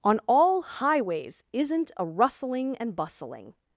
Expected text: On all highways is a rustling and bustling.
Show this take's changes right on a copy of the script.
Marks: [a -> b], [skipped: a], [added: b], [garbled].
On all highways [is -> isn't] a rustling and bustling.